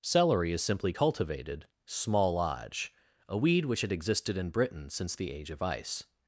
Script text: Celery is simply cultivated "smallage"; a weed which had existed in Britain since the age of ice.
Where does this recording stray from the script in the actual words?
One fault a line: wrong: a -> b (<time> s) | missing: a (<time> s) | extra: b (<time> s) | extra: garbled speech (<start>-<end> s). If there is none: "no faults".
no faults